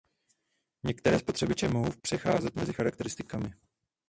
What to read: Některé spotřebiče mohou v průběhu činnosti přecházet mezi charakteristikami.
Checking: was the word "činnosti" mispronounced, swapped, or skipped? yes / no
yes